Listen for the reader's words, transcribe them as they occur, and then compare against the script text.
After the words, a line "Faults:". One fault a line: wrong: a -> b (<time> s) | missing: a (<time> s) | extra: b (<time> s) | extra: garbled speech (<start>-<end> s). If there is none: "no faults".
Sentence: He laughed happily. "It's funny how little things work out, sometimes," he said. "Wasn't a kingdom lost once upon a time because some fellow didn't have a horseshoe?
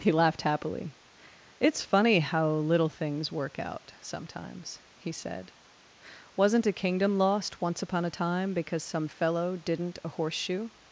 He laughed happily. "It's funny how little things work out, sometimes," he said. "Wasn't a kingdom lost once upon a time because some fellow didn't a horseshoe?
Faults:
missing: have (10.0 s)